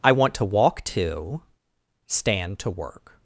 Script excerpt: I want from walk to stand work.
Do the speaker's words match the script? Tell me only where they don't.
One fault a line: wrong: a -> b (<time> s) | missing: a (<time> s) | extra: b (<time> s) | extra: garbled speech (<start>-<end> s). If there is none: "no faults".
wrong: from -> to (0.3 s)
extra: to (2.6 s)